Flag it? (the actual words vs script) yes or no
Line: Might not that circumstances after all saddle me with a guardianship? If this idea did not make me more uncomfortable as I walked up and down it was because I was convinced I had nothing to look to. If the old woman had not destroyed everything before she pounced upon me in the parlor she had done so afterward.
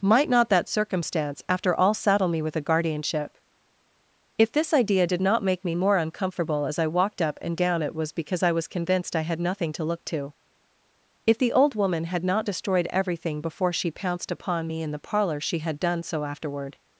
yes